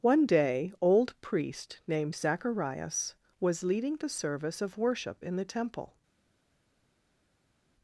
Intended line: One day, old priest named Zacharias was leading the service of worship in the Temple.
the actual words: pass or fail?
pass